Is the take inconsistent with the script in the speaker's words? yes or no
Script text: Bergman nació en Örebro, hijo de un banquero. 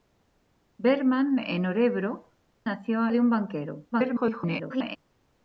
yes